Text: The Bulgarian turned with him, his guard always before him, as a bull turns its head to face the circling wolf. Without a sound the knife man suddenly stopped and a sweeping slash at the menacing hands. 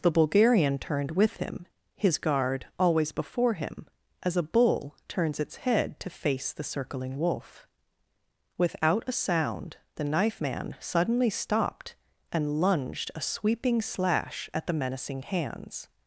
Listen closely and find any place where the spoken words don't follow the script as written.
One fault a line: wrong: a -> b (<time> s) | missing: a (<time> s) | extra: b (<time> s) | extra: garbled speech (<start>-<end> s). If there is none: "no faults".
extra: lunged (12.6 s)